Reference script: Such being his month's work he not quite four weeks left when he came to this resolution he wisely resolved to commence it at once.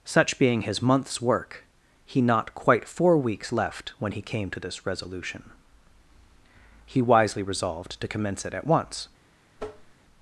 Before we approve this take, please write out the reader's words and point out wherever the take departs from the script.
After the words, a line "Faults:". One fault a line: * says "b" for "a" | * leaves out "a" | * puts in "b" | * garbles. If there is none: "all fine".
Such being his month's work he not quite four weeks left when he came to this resolution he wisely resolved to commence it at once.
Faults:
all fine